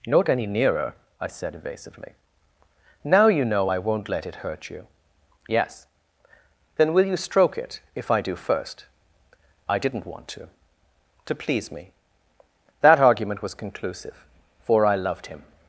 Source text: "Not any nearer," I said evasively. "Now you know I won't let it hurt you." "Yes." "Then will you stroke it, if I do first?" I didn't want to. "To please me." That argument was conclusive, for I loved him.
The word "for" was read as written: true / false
true